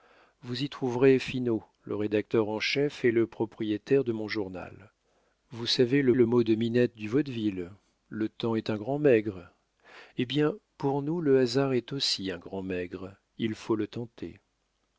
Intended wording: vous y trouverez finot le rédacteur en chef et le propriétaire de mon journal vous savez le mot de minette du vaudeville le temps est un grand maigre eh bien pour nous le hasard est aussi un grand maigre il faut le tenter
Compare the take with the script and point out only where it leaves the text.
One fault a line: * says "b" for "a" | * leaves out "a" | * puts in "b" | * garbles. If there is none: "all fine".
* puts in "le"